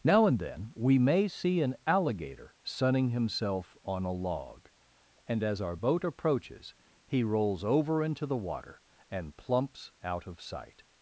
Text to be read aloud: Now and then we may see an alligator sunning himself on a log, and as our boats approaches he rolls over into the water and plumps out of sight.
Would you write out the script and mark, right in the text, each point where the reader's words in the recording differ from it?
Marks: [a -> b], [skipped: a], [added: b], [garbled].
Now and then we may see an alligator sunning himself on a log, and as our [boats -> boat] approaches he rolls over into the water and plumps out of sight.